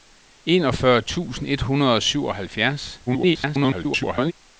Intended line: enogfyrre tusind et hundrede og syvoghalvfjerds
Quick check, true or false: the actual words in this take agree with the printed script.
false